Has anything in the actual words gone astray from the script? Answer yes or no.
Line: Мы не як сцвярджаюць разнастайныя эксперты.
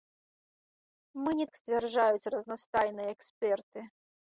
no